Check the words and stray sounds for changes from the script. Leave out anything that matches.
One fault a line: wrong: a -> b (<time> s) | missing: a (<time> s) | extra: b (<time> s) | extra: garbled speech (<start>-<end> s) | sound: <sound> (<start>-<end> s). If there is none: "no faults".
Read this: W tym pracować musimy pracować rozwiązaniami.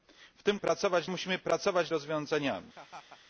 sound: laugh (2.7-3.2 s)